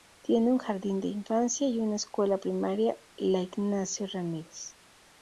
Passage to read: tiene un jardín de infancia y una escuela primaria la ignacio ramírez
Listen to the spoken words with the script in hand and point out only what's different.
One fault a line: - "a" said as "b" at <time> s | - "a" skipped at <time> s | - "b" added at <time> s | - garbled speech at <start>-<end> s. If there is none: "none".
none